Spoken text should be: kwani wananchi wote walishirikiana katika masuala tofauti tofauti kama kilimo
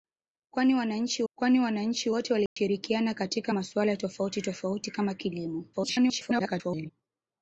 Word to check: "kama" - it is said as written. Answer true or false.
true